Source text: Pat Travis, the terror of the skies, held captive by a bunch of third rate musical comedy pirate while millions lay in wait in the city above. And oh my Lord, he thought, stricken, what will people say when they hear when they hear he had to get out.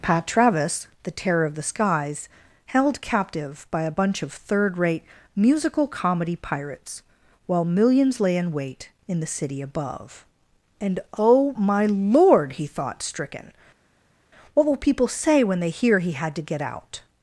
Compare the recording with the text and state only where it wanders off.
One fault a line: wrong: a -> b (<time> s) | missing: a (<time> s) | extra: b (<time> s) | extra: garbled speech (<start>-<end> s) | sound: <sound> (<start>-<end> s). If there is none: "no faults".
wrong: pirate -> pirates (6.4 s)
missing: when they hear (16.0 s)